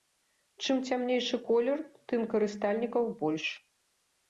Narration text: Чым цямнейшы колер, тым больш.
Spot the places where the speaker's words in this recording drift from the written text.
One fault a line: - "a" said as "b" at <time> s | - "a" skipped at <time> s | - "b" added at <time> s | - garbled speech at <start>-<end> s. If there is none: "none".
- "карыстальнікаў" added at 2.3 s